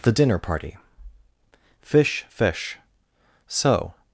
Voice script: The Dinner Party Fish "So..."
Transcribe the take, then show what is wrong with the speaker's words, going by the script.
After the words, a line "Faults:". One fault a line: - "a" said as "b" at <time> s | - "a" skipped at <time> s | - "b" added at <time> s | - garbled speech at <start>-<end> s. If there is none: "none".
The Dinner Party Fish fish "So..."
Faults:
- "fish" added at 2.3 s